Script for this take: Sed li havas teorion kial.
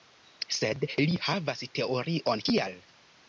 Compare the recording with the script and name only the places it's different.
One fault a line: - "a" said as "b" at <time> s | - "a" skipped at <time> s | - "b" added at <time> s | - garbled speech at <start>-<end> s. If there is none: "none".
none